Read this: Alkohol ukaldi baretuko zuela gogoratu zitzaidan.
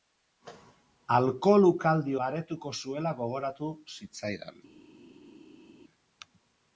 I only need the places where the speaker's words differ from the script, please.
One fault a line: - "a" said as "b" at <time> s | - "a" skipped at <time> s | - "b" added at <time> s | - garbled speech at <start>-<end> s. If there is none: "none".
none